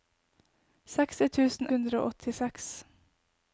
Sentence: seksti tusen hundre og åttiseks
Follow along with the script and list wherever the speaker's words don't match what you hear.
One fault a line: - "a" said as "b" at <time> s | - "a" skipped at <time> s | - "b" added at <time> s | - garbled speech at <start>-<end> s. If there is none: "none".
none